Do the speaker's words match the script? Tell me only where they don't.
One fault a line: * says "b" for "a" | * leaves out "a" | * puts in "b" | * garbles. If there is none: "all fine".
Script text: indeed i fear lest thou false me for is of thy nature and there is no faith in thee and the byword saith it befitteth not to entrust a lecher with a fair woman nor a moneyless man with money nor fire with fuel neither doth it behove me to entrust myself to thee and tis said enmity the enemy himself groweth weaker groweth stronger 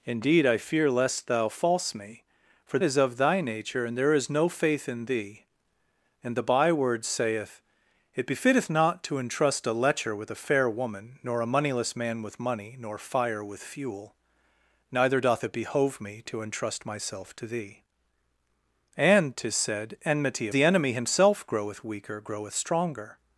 all fine